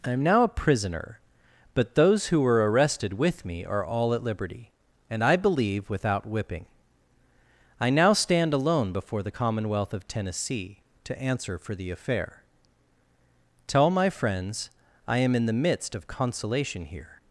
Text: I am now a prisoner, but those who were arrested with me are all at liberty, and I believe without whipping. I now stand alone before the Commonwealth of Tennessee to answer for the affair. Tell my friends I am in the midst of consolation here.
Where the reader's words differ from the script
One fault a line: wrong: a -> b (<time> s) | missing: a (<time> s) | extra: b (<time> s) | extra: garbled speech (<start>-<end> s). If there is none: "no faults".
no faults